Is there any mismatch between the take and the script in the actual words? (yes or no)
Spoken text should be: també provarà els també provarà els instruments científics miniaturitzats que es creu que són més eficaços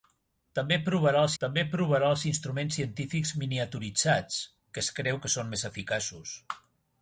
no